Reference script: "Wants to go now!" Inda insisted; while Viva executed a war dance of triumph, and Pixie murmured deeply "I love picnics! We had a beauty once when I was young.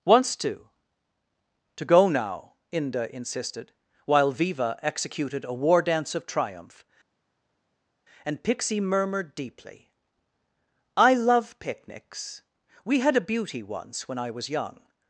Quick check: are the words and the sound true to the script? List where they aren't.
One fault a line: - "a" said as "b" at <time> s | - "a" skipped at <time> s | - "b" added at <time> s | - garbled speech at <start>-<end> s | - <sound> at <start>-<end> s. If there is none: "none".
- "to" added at 1.8 s